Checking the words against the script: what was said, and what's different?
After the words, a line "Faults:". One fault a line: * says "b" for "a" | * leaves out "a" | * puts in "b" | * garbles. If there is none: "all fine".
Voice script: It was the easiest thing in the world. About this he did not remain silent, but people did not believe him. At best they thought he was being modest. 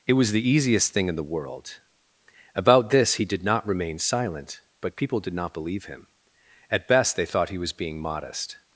It was the easiest thing in the world. About this he did not remain silent, but people did not believe him. At best they thought he was being modest.
Faults:
all fine